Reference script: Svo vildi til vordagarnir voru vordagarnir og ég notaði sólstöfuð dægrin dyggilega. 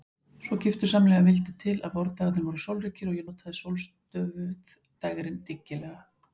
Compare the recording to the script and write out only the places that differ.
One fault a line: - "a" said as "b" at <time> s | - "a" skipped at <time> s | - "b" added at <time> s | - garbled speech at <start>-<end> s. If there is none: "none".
- "giftusamlega" added at 0.6 s
- "að" added at 1.9 s
- "vordagarnir" said as "sólríkir" at 2.7 s